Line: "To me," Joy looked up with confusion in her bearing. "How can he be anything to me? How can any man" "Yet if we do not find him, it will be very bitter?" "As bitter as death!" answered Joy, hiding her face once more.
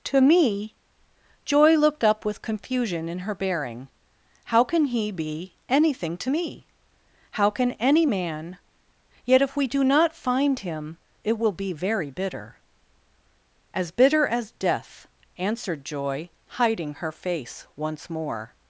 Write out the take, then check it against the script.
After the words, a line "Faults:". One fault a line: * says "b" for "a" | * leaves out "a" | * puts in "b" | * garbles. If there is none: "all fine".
"To me," Joy looked up with confusion in her bearing. "How can he be anything to me? How can any man" "Yet if we do not find him, it will be very bitter?" "As bitter as death!" answered Joy, hiding her face once more.
Faults:
all fine